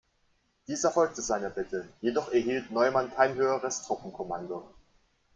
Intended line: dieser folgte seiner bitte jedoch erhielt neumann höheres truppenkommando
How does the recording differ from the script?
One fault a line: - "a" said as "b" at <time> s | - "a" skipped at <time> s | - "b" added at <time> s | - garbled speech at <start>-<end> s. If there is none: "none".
- "kein" added at 3.1 s